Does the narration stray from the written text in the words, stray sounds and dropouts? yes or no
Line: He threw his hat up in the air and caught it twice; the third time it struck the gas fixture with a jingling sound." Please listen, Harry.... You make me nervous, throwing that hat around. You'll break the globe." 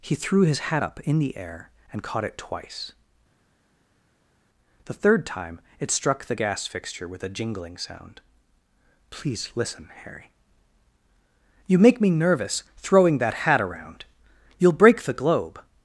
no